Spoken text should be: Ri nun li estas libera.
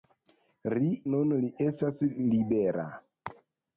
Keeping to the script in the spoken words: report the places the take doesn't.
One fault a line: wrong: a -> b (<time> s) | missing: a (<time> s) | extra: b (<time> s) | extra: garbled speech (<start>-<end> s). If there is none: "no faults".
no faults